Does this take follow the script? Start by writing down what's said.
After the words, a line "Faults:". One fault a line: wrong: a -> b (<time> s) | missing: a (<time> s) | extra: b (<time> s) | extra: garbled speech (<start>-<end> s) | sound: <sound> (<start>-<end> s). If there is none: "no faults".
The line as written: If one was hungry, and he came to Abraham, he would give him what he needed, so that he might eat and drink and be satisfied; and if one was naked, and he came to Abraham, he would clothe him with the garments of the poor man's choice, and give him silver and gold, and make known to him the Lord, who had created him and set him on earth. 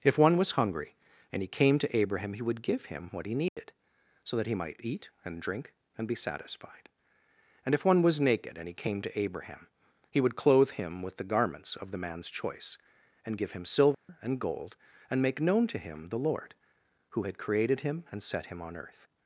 If one was hungry, and he came to Abraham, he would give him what he needed, so that he might eat and drink and be satisfied; and if one was naked, and he came to Abraham, he would clothe him with the garments of the man's choice, and give him silver and gold, and make known to him the Lord, who had created him and set him on earth.
Faults:
sound: dropout (3.5-3.6 s)
missing: poor (12.0 s)
sound: dropout (13.9-14.1 s)